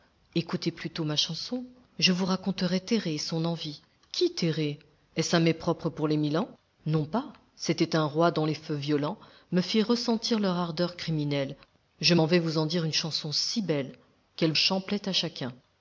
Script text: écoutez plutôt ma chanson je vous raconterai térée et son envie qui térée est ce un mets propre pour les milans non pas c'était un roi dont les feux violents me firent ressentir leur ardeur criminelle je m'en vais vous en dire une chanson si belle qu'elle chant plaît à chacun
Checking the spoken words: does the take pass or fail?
pass